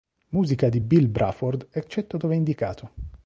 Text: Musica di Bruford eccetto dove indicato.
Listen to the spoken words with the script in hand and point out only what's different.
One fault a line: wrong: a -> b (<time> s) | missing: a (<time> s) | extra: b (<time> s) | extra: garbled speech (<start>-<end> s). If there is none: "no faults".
extra: Bill (0.8 s)